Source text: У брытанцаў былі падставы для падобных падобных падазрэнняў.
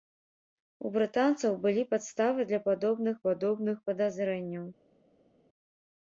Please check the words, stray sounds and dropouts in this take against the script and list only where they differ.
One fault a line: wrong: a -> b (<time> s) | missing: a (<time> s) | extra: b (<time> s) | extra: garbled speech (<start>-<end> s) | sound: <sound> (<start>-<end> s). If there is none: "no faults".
no faults